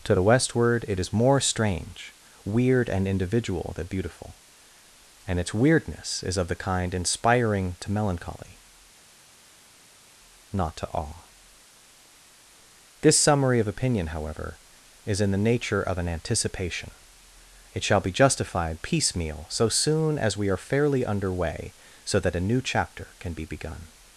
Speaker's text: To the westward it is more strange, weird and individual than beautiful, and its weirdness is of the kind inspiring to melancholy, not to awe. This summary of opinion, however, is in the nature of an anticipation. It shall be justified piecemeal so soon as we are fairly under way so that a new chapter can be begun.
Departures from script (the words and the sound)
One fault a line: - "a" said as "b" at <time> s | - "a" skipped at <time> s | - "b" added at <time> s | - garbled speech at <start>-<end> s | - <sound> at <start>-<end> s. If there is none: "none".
none